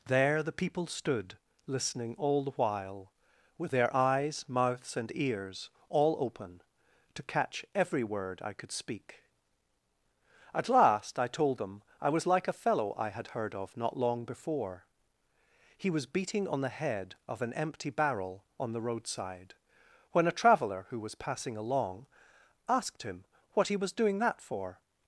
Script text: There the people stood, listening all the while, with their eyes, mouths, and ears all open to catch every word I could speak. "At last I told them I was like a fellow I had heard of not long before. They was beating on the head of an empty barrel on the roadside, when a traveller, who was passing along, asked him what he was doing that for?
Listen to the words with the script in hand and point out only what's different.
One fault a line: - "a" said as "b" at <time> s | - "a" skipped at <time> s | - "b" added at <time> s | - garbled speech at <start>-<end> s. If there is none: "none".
- "They" said as "He" at 15.8 s